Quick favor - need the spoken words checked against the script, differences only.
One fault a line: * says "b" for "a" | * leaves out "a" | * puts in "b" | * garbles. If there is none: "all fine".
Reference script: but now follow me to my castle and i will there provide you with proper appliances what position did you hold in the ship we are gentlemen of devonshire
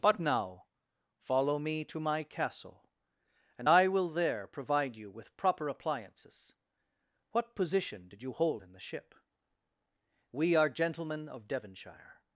all fine